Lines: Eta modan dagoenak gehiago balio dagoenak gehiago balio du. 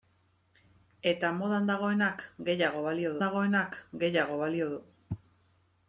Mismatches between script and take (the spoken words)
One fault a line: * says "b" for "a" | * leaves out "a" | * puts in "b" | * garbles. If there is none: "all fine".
all fine